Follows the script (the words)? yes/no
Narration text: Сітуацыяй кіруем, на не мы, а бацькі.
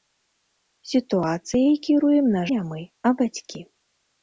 yes